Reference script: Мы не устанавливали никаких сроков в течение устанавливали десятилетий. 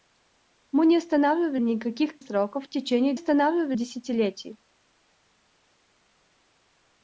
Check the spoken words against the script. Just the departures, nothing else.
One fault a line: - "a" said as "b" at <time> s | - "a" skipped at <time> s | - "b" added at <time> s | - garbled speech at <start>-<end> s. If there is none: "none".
none